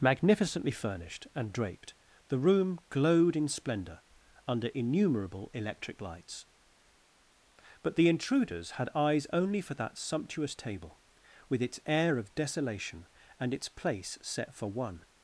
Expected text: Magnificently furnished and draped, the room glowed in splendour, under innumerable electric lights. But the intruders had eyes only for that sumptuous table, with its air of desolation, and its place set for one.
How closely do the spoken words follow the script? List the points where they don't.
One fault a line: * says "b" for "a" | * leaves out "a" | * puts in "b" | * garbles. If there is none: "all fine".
all fine